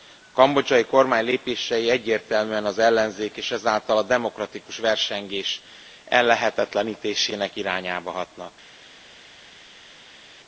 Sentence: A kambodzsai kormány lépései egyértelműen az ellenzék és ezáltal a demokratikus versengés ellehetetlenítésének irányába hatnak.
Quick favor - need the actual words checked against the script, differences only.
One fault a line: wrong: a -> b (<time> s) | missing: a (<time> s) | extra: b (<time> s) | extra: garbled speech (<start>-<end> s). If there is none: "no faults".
no faults